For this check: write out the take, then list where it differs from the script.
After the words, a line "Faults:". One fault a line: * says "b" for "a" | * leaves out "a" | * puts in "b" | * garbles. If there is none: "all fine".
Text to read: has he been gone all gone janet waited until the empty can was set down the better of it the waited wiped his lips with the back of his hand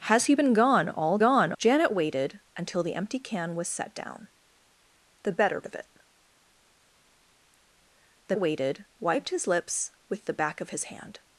has he been gone all gone janet waited until the empty can was set down the better of it the waited wiped his lips with the back of his hand
Faults:
all fine